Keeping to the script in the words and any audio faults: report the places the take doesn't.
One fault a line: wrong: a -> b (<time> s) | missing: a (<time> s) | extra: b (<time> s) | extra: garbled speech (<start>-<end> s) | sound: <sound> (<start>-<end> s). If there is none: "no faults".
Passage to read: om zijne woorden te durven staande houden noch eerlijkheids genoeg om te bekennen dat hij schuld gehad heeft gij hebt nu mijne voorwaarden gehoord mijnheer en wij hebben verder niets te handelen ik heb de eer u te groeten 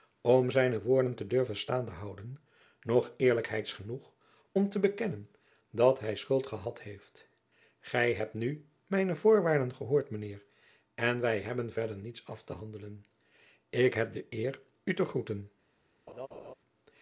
extra: af (12.2 s)
sound: laugh (16.1-16.5 s)